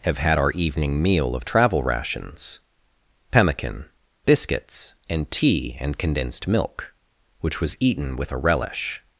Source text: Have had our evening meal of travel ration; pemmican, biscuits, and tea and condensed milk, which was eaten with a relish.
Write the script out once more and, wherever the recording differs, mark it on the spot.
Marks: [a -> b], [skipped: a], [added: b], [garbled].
Have had our evening meal of travel [ration; -> rations] pemmican, biscuits, and tea and condensed milk, which was eaten with a relish.